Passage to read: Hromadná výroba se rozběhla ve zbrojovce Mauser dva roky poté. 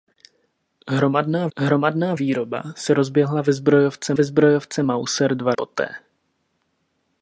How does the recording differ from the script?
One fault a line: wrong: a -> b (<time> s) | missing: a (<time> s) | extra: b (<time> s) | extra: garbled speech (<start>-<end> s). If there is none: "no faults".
extra: hromadná (1.6 s)
extra: ve zbrojovce (4.1 s)
missing: roky (5.5 s)